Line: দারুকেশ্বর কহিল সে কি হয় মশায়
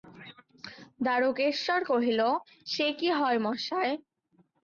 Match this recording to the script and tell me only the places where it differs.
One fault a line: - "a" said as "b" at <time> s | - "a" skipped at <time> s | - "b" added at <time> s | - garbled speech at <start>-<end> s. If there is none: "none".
none